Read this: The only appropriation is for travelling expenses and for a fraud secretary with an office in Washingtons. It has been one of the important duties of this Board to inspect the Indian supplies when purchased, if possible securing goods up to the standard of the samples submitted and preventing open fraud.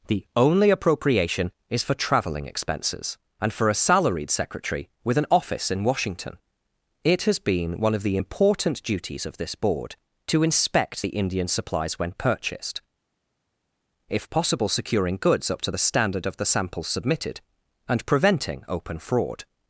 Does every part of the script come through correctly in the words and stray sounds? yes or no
no